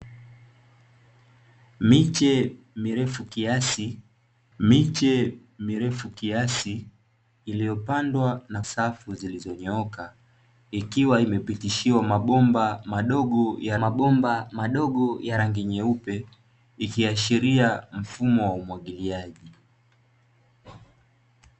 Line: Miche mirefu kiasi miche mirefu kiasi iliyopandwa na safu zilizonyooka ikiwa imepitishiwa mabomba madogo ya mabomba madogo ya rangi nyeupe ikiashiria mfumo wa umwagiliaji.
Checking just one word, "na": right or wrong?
right